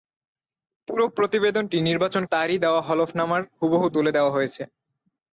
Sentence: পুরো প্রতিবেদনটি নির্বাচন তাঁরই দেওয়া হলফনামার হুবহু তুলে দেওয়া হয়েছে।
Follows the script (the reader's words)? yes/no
yes